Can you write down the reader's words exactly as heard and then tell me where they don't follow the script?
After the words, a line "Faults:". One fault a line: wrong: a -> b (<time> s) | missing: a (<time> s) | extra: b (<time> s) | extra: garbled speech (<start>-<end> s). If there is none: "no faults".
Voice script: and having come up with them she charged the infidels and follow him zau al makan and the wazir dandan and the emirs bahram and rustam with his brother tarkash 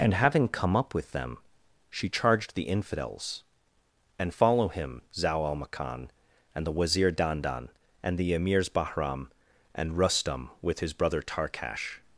and having come up with them she charged the infidels and follow him zau al makan and the wazir dandan and the emirs bahram and rustam with his brother tarkash
Faults:
no faults